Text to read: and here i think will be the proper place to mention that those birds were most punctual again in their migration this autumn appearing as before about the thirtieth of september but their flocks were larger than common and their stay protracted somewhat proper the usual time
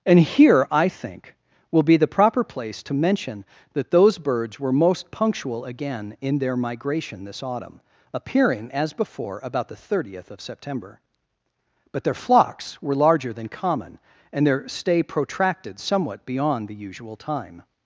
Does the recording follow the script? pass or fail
fail